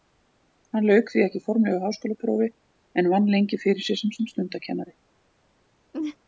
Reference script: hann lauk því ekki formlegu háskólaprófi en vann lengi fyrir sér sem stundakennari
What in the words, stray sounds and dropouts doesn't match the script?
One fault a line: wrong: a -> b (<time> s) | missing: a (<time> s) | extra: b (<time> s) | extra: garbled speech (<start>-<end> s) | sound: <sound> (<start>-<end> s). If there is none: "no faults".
extra: sem (4.2 s)
sound: laugh (5.9-6.2 s)